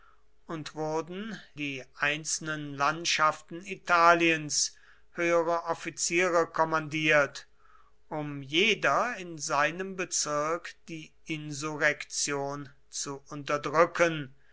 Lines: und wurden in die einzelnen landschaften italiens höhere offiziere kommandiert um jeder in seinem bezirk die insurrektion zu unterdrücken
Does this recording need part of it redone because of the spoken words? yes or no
yes